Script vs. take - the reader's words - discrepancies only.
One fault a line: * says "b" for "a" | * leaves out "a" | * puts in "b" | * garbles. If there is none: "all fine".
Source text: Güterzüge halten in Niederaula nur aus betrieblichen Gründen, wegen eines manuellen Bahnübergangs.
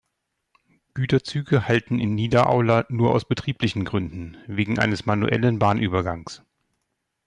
all fine